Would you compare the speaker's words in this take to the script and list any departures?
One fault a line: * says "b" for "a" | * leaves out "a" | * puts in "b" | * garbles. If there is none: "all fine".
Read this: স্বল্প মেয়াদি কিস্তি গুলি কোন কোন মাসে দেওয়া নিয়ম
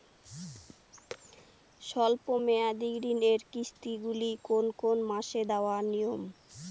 * puts in "ঋণের"